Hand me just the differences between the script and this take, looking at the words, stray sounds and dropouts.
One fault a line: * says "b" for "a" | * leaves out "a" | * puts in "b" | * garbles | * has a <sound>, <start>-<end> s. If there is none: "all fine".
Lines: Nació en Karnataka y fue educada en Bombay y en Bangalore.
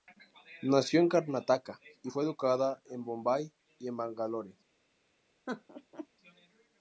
* has a laugh, 5.5-6.1 s